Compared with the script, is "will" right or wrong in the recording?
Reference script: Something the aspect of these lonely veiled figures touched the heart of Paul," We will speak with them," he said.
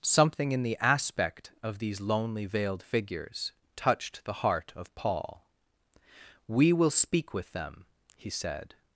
right